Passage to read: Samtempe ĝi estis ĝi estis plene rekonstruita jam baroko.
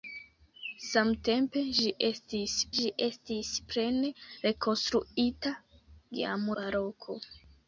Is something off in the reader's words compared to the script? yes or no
no